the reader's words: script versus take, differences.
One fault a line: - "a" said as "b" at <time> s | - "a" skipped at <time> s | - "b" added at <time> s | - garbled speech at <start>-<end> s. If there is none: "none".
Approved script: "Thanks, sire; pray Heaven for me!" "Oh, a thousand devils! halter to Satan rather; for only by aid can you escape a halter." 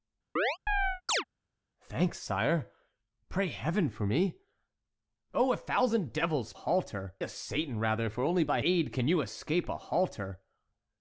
none